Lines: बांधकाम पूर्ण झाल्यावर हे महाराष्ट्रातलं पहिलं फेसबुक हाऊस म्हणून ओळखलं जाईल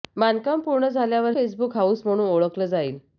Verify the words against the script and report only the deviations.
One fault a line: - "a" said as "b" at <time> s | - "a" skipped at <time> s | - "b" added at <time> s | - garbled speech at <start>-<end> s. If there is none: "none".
- "हे महाराष्ट्रातलं पहिलं" skipped at 1.3 s